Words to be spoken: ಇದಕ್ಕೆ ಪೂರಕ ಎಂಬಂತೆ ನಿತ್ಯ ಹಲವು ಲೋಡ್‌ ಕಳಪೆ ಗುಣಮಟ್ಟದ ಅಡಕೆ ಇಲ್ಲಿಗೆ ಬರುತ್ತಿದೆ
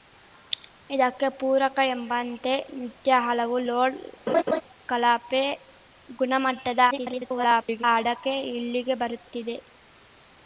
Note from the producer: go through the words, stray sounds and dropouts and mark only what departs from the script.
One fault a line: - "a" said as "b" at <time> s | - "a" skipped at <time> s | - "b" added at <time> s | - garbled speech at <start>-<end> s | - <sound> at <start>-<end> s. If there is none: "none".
- laugh at 4.3-4.6 s
- garbled speech at 6.9-7.8 s